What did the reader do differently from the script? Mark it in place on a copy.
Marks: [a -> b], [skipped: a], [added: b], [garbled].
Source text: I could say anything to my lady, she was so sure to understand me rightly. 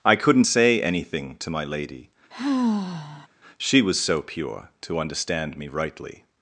I [could -> couldn't] say anything to my lady, she was so [sure -> pure] to understand me rightly.